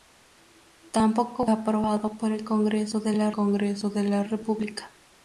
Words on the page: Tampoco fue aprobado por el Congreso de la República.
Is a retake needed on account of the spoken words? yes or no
yes